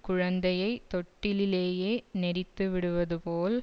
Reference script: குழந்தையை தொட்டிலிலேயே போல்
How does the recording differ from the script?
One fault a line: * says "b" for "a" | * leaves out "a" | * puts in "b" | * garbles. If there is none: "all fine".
* puts in "நெரித்துவிடுவது"